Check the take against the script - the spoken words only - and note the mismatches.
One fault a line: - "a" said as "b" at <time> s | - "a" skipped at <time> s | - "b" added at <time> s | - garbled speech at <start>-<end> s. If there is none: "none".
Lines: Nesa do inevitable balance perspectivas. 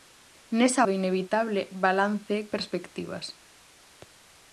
none